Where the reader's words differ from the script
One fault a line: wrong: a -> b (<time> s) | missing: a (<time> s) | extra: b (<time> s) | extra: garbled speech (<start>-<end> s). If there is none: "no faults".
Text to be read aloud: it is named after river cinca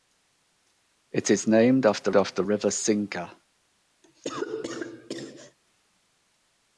extra: after (2.2 s)